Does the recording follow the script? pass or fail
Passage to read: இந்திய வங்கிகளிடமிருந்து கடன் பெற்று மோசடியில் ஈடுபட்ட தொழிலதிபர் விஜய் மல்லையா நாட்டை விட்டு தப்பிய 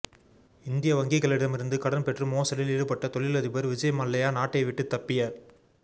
pass